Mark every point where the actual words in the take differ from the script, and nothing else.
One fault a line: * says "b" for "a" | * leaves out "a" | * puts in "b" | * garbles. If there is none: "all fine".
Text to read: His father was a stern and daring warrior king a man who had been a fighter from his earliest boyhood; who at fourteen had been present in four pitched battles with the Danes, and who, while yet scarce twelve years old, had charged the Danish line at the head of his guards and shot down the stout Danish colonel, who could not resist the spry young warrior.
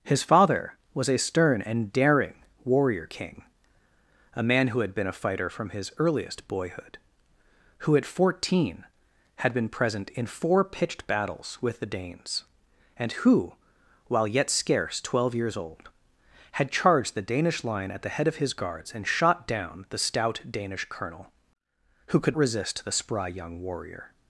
* leaves out "not"